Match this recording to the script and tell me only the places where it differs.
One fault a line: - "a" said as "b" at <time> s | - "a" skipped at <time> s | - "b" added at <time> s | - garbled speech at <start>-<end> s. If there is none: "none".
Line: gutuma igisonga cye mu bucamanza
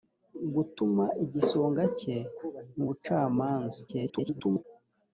- garbled speech at 3.9-4.6 s